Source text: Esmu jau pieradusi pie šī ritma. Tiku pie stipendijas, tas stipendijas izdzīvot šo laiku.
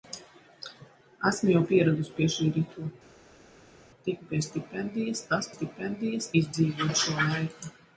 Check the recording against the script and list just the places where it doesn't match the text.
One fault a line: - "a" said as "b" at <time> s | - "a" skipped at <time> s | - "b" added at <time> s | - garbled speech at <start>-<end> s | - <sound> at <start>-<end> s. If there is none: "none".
none